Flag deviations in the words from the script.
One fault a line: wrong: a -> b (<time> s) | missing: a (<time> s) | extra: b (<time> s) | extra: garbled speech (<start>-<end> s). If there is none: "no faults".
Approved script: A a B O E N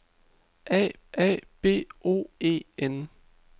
no faults